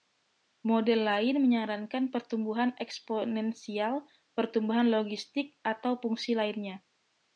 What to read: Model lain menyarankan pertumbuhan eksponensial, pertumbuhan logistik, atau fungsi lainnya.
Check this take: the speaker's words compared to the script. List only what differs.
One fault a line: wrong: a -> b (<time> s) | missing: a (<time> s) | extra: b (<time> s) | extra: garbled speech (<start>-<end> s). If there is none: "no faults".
no faults